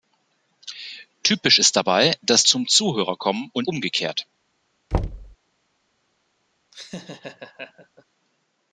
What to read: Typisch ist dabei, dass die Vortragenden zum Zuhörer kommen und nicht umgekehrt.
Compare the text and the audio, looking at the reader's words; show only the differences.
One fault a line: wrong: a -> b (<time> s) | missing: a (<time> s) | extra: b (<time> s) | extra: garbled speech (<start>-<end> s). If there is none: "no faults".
missing: die Vortragenden (2.4 s)
missing: nicht (3.7 s)